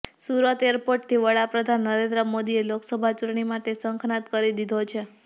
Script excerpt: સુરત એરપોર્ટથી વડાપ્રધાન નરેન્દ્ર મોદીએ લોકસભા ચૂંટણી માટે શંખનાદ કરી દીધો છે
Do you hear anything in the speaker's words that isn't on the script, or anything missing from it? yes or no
no